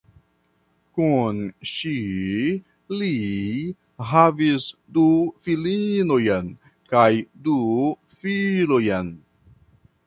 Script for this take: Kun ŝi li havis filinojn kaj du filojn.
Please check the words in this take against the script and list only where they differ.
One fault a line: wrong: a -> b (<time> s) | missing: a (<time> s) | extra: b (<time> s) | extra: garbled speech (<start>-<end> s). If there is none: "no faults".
extra: du (5.0 s)